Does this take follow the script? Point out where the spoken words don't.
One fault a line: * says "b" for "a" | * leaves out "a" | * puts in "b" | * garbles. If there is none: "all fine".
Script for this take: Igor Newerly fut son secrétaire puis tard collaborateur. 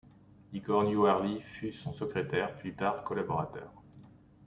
all fine